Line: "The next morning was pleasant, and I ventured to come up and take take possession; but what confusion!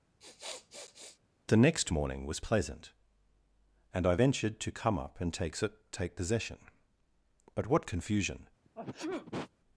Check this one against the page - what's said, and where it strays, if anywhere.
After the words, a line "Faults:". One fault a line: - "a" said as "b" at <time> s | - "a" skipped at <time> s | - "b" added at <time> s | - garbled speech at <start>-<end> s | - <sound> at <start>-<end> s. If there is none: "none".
"The next morning was pleasant, and I ventured to come up and take take possession; but what confusion!
Faults:
- sniff at 0.2-1.2 s
- sneeze at 8.6-9.5 s